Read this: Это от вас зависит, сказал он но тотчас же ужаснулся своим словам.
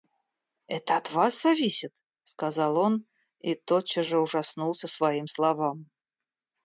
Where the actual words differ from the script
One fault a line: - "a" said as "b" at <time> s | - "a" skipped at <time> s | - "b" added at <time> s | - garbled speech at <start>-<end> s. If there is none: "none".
- "но" said as "и" at 3.4 s